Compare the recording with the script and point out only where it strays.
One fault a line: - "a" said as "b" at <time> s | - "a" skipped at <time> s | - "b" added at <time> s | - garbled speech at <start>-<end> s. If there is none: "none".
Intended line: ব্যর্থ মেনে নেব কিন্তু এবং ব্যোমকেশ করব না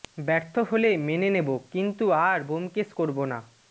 - "হলে" added at 0.7 s
- "এবং" said as "আর" at 2.2 s